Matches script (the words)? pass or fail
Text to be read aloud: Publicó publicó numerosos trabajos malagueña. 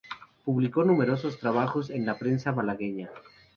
fail